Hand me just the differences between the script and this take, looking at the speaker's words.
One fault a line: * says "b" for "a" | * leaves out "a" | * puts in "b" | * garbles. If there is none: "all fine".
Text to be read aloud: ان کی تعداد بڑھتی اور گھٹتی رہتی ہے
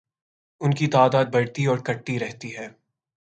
all fine